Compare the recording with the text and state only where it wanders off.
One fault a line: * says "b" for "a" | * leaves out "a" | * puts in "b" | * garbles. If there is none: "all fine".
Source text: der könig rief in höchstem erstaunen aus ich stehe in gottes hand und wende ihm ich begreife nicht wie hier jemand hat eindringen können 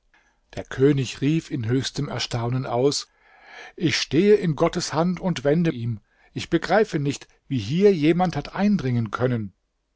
all fine